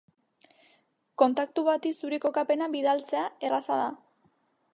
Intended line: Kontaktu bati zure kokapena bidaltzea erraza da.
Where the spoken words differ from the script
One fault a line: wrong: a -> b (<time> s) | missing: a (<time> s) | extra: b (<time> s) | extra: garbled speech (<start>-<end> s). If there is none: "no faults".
no faults